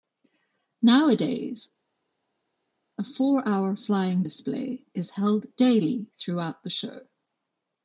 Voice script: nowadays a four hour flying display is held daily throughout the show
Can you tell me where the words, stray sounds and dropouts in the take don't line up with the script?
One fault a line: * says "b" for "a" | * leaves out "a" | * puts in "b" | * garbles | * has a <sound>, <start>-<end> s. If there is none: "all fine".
all fine